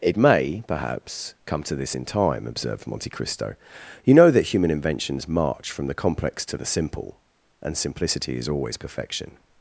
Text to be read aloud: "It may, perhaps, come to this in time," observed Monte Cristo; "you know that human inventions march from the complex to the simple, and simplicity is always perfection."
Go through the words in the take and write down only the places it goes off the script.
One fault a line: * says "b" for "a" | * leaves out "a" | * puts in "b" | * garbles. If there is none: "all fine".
all fine